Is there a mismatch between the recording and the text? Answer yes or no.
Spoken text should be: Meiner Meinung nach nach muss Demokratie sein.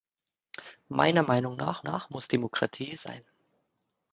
no